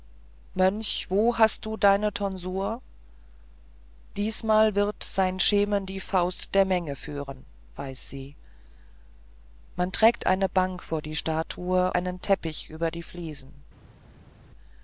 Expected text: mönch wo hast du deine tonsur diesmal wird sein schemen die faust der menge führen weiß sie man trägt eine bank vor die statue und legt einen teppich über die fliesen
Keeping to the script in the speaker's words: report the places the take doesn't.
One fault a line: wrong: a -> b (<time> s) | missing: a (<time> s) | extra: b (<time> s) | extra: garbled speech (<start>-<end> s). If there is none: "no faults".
missing: und legt (11.9 s)